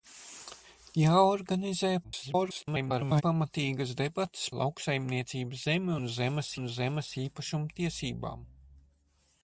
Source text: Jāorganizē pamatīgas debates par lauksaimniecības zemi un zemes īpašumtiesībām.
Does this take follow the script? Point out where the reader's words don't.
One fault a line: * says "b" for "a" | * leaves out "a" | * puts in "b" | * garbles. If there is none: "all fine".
* garbles
* leaves out "par"
* puts in "un zemes"